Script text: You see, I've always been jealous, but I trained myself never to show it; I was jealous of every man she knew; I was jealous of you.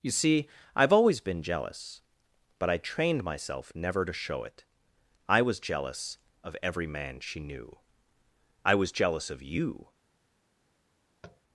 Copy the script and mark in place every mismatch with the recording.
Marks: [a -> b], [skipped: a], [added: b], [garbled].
You see, I've always been jealous, but I trained myself never to show it; I was jealous of every man she knew; I was jealous of you.